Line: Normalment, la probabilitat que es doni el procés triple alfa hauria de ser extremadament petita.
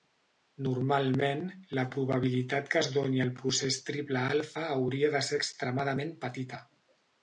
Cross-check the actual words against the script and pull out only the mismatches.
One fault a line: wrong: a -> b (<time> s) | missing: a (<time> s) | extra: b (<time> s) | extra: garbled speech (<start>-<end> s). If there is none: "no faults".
no faults